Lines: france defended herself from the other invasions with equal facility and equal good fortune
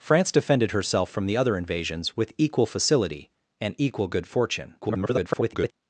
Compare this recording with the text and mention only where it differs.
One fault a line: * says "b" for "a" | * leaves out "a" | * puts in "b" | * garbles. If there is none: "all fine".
* garbles